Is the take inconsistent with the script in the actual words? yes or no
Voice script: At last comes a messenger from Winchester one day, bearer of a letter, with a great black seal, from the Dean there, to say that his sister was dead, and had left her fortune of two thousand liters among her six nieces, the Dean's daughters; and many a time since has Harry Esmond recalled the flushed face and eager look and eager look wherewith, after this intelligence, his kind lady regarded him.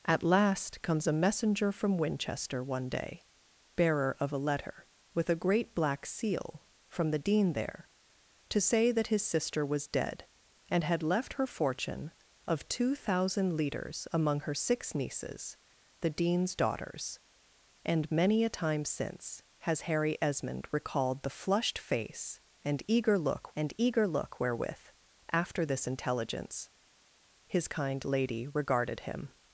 no